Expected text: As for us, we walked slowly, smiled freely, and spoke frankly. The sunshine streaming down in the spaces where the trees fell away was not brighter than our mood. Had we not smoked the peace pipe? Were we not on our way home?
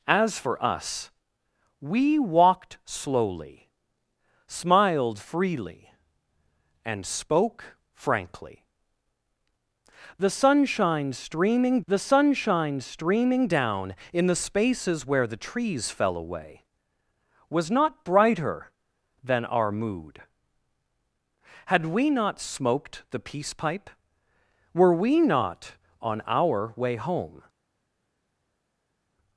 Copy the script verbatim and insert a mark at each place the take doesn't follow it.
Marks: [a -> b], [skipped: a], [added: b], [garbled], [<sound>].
As for us, we walked slowly, smiled freely, and spoke frankly. The sunshine streaming [added: the sunshine streaming] down in the spaces where the trees fell away was not brighter than our mood. Had we not smoked the peace pipe? Were we not on our way home?